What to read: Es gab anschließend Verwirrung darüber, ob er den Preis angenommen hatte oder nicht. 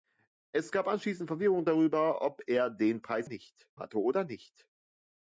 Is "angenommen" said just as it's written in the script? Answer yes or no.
no